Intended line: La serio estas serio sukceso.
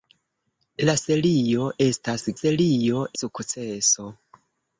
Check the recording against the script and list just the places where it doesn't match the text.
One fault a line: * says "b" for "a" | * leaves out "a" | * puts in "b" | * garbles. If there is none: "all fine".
all fine